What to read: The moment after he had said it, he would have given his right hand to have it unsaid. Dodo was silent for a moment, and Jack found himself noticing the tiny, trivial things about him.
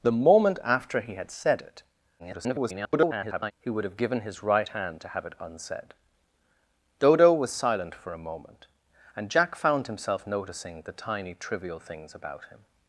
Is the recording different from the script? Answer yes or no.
yes